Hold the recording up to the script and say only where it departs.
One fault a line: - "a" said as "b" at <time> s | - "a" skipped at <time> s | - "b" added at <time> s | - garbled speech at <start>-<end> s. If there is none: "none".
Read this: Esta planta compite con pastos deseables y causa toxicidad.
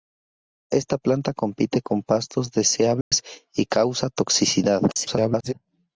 - garbled speech at 4.9-5.5 s